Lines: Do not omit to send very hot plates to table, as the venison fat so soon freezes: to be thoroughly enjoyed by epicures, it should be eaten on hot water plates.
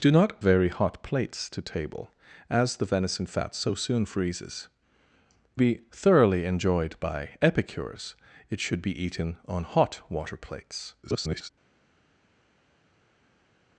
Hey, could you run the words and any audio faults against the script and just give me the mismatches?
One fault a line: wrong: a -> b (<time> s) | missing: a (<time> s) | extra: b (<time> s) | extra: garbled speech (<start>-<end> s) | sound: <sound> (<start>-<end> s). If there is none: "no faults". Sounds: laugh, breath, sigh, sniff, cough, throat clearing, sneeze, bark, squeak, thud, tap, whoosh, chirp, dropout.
missing: omit to send (0.4 s)
missing: to (4.7 s)
extra: garbled speech (11.0-11.5 s)